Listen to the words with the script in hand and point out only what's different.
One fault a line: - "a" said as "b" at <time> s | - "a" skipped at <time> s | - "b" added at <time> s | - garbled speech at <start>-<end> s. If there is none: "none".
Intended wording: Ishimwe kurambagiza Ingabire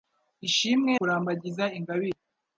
none